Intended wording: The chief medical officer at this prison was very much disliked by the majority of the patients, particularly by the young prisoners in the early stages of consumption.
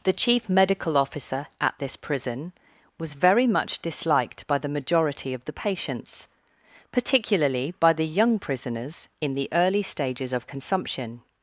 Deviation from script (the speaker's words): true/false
false